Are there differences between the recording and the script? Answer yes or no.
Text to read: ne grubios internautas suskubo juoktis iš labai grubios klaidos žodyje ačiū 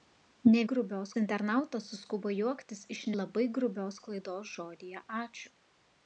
no